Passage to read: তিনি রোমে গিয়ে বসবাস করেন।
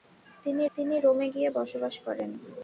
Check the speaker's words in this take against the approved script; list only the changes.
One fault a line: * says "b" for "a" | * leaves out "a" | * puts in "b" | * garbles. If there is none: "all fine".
* puts in "তিনি"